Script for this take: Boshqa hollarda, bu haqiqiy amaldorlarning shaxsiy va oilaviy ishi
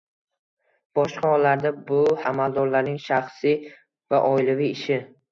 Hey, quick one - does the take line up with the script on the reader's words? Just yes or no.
no